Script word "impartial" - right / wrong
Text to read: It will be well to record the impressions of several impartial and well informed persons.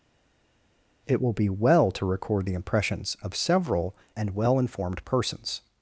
wrong